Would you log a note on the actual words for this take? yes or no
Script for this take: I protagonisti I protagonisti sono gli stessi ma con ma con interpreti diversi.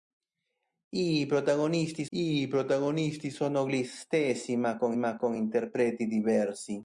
no